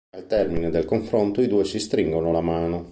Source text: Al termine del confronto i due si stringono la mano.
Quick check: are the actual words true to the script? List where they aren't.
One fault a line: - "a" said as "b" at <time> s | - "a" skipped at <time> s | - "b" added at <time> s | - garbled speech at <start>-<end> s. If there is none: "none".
none